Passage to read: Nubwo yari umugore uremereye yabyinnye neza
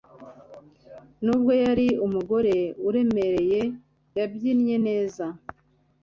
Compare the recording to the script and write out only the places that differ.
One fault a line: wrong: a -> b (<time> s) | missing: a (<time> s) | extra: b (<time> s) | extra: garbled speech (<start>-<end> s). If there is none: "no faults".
no faults